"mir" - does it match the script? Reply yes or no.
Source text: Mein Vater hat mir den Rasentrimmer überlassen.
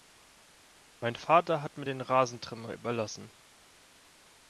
yes